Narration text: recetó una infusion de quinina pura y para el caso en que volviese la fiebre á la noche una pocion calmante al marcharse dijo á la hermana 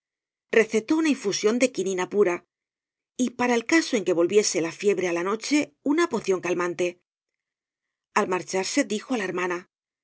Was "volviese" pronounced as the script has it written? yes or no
yes